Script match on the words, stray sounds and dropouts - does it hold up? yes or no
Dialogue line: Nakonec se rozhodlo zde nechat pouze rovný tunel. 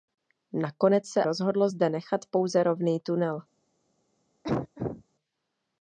no